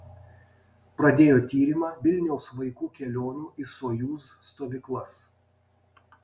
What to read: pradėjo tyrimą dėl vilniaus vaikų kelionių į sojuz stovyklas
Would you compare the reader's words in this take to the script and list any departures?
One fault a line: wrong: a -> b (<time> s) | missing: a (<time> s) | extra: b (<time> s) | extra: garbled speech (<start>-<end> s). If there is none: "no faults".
missing: dėl (1.9 s)